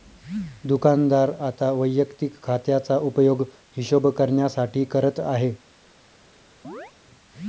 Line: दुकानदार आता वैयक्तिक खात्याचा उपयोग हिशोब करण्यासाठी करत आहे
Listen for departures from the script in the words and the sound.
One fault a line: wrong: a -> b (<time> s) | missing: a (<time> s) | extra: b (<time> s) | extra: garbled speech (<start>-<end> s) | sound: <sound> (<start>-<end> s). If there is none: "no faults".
sound: chirp (6.6-6.9 s)